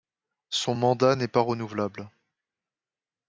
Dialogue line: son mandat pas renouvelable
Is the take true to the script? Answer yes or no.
no